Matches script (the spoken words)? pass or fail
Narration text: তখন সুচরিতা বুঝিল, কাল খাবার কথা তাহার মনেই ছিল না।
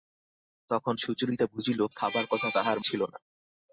fail